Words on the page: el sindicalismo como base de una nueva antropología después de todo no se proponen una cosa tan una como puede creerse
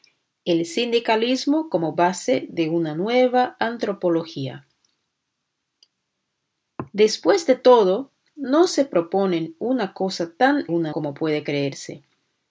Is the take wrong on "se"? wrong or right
right